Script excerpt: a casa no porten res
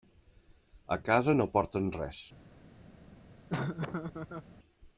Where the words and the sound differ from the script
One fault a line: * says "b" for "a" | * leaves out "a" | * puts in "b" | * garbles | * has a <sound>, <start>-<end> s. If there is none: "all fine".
* has a laugh, 3.5-4.5 s